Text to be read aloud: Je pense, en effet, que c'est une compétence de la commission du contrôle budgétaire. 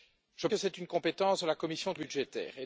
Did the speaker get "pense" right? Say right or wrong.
wrong